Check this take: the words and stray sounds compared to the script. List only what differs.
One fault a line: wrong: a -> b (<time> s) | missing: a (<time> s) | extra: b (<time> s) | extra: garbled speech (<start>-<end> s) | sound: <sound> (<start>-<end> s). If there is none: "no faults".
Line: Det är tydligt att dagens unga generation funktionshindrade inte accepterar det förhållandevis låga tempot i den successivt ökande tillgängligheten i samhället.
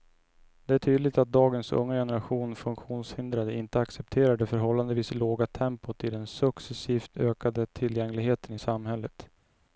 no faults